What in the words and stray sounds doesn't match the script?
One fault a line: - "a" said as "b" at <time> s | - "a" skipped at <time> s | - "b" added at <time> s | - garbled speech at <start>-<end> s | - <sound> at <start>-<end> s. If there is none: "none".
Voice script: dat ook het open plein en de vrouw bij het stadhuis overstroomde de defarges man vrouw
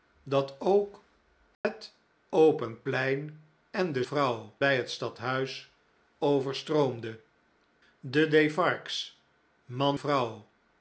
- dropout at 1.5-1.6 s